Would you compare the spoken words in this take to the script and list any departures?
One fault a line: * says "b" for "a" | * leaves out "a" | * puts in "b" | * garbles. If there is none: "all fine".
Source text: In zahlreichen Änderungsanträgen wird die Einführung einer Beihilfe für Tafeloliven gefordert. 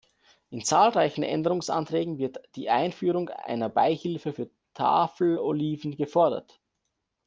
all fine